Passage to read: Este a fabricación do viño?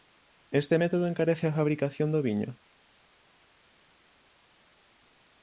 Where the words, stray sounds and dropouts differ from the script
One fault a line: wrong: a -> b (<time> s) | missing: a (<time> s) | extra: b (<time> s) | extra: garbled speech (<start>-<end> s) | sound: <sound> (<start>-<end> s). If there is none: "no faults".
extra: método encarece (0.8 s)